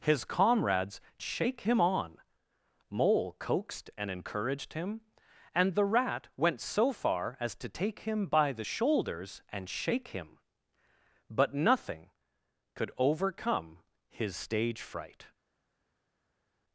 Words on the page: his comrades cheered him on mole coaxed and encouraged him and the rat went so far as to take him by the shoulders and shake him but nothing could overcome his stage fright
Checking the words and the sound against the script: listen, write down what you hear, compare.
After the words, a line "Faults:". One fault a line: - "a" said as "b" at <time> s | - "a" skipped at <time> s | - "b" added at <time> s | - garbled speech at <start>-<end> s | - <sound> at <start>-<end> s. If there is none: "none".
his comrades shake him on mole coaxed and encouraged him and the rat went so far as to take him by the shoulders and shake him but nothing could overcome his stage fright
Faults:
- "cheered" said as "shake" at 1.2 s